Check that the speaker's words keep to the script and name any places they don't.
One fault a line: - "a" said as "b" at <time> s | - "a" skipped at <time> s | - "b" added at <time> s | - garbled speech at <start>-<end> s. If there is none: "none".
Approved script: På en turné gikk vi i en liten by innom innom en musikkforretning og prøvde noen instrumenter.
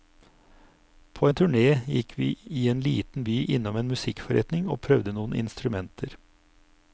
- "innom" skipped at 3.8 s